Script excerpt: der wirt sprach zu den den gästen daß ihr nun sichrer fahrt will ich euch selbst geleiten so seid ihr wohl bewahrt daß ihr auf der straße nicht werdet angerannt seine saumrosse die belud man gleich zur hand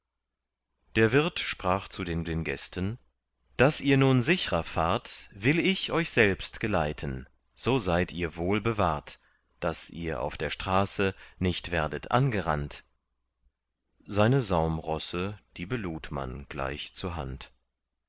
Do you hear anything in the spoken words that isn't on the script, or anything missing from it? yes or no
no